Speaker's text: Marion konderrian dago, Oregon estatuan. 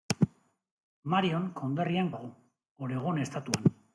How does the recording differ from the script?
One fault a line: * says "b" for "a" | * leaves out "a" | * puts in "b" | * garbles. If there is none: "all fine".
all fine